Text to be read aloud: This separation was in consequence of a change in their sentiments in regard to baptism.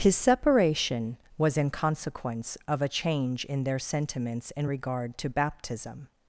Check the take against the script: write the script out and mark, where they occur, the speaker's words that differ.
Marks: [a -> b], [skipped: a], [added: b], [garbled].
[This -> His] separation was in consequence of a change in their sentiments in regard to baptism.